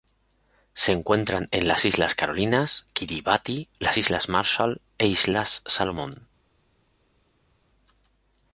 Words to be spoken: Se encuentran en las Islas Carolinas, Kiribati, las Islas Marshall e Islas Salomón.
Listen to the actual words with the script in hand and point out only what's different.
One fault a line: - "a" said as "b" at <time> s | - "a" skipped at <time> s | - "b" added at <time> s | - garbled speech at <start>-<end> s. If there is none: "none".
none